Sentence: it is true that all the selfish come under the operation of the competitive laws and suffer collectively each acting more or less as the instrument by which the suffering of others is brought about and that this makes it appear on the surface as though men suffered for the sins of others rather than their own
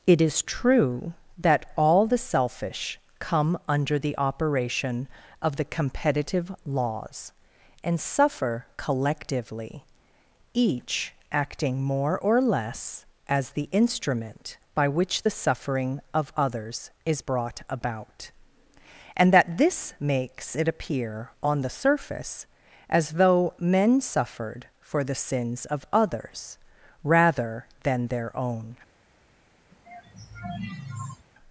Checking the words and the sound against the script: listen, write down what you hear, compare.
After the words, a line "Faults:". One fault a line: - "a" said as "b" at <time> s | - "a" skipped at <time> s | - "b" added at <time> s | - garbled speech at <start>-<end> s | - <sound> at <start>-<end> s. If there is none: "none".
it is true that all the selfish come under the operation of the competitive laws and suffer collectively each acting more or less as the instrument by which the suffering of others is brought about and that this makes it appear on the surface as though men suffered for the sins of others rather than their own
Faults:
- sigh at 29.7-31.3 s